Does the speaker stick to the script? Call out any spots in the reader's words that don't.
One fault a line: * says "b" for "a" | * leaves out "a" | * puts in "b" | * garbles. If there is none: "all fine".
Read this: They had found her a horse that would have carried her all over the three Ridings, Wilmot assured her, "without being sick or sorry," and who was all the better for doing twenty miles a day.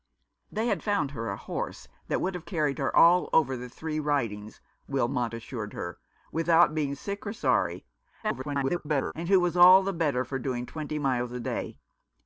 * garbles